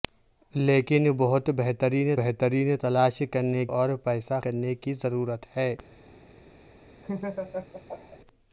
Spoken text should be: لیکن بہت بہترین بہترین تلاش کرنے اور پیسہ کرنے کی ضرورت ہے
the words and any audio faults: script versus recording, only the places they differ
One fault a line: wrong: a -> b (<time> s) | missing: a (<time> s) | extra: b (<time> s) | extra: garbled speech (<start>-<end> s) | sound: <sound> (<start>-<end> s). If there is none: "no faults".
sound: laugh (7.0-8.2 s)